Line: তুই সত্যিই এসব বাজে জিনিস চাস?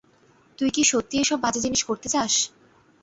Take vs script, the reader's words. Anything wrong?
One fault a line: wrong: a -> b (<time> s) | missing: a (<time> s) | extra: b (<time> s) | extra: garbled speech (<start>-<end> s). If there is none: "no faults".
extra: কি (0.7 s)
extra: করতে (1.8 s)